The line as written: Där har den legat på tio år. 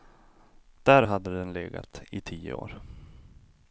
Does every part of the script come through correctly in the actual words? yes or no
no